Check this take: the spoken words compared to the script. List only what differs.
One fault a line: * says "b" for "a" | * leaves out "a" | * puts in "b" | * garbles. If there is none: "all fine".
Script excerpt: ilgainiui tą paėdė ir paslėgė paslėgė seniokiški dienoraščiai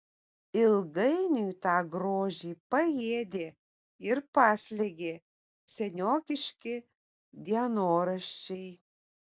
* puts in "grožį"
* leaves out "paslėgė"